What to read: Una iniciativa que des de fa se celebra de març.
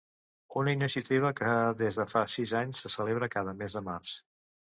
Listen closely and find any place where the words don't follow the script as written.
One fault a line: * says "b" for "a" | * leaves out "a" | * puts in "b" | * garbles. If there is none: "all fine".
* puts in "sis anys"
* puts in "cada mes"